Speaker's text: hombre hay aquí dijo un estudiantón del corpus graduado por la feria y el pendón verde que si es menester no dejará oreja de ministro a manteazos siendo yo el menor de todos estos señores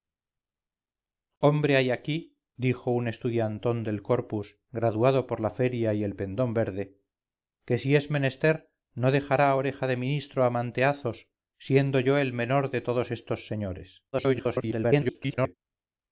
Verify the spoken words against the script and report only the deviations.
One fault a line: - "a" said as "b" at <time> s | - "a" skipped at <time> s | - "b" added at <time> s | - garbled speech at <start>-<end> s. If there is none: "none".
- garbled speech at 14.1-15.6 s